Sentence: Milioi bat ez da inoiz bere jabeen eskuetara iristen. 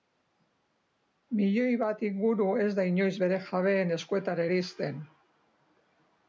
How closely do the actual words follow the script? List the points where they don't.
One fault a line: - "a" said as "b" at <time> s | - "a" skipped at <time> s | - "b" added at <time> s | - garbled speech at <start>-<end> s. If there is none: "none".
- "inguru" added at 2.1 s